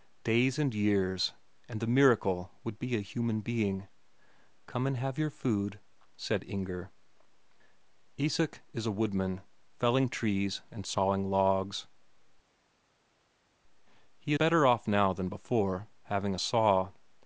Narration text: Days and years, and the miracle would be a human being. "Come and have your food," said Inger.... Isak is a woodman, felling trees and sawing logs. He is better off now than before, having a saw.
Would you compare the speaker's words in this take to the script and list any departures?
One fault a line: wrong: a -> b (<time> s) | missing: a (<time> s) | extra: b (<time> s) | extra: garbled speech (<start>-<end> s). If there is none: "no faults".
missing: is (14.3 s)